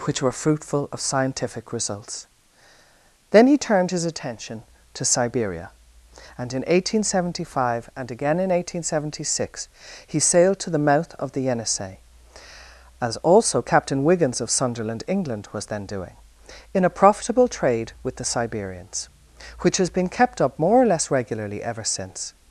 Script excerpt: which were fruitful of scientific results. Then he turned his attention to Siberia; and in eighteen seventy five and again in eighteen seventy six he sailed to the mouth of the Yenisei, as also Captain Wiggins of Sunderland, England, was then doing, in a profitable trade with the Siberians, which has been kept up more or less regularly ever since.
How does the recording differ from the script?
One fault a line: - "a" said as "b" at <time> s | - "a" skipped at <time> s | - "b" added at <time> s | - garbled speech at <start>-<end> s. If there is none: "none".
none